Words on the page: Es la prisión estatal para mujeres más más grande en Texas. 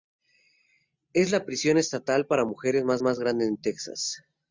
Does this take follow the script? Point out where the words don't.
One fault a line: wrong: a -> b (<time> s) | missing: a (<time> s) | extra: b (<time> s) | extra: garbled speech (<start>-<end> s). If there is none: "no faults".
no faults